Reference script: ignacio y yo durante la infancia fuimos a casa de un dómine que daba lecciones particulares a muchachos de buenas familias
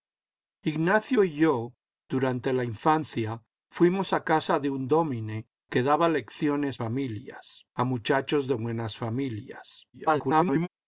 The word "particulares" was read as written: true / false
false